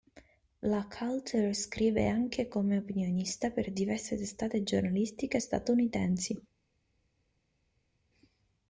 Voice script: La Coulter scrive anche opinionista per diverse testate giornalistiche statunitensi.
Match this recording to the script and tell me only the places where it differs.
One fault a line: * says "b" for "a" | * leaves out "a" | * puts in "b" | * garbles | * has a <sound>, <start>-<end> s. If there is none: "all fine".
* puts in "come"